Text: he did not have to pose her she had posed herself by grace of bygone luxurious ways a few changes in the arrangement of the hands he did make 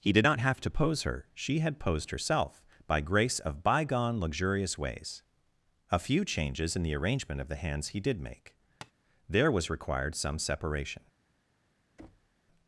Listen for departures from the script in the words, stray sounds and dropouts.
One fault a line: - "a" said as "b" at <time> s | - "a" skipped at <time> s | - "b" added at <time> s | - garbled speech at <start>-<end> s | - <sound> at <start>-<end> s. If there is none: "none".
- tap at 8.8-8.9 s
- "there was required some separation" added at 9.3 s
- thud at 12.0-12.4 s